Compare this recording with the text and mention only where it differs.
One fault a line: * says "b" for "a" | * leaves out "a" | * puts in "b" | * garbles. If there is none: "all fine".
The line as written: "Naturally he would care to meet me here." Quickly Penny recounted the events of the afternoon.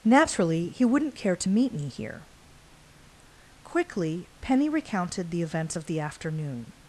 * says "wouldn't" for "would"